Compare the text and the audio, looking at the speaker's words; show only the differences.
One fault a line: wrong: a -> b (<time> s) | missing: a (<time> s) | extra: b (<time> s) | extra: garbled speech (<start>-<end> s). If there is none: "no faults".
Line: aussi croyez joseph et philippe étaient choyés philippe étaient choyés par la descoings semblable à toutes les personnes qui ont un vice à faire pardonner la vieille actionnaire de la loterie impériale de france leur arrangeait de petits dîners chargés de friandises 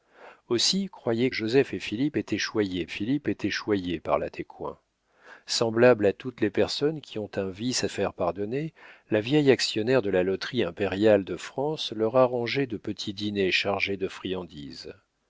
no faults